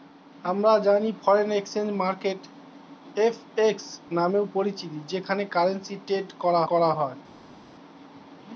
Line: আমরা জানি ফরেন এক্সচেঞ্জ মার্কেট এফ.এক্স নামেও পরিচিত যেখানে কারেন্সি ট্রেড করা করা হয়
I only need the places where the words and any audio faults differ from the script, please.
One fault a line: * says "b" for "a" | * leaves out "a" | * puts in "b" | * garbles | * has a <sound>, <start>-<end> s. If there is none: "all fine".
all fine